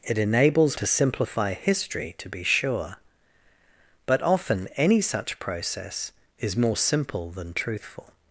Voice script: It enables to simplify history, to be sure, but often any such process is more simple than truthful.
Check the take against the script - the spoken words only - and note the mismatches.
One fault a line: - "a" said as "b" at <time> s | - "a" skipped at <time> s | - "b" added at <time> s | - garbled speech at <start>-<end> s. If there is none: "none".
none